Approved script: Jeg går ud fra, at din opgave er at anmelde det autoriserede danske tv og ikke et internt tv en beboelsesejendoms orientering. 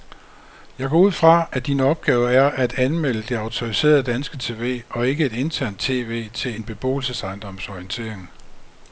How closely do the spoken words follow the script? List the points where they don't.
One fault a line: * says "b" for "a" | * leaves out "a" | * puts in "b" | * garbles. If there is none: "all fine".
* puts in "til"